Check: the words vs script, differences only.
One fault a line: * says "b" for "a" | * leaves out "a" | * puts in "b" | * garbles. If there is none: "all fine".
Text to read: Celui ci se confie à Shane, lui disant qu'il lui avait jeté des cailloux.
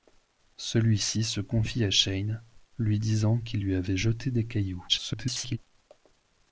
* garbles